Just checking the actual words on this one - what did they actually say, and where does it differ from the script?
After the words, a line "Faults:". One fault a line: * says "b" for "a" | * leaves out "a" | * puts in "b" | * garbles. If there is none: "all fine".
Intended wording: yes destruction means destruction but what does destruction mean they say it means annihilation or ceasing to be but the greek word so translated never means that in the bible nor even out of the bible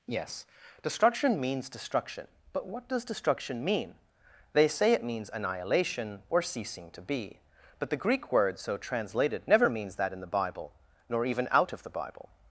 yes destruction means destruction but what does destruction mean they say it means annihilation or ceasing to be but the greek word so translated never means that in the bible nor even out of the bible
Faults:
all fine